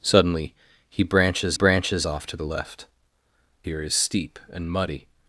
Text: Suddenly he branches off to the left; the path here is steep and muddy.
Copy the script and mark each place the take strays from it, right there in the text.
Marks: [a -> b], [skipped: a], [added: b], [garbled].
Suddenly he branches [added: branches] off to the left; [skipped: the path] here is steep and muddy.